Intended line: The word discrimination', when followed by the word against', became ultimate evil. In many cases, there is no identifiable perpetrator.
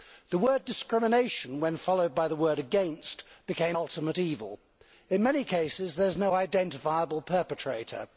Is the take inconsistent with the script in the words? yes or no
no